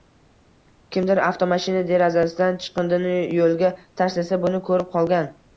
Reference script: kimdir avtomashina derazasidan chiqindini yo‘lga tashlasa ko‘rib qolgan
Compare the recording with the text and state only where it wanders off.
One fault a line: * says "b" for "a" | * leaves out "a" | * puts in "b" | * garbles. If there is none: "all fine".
* puts in "buni"